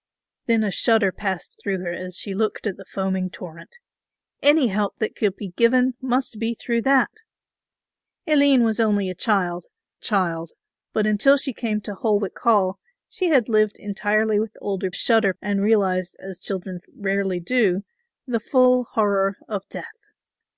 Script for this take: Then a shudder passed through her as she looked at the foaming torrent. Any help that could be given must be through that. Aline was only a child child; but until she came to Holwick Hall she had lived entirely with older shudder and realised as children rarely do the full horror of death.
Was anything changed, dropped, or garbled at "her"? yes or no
no